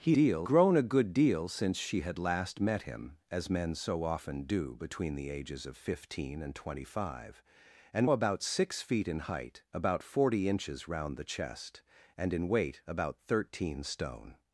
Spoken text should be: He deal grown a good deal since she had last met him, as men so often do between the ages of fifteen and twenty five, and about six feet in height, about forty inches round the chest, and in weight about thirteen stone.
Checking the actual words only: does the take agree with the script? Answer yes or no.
yes